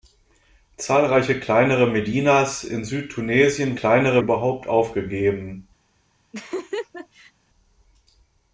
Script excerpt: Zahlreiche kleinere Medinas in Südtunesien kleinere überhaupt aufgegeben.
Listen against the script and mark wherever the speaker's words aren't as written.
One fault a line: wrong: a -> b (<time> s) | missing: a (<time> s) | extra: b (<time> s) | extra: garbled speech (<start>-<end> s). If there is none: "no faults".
no faults